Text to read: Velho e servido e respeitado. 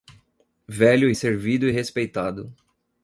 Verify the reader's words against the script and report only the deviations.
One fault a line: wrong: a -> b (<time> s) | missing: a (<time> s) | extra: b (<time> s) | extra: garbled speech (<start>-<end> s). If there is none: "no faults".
no faults